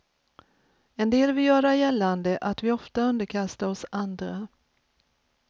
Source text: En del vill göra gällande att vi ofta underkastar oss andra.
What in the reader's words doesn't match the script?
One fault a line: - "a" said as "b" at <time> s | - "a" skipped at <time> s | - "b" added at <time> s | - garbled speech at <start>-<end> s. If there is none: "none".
none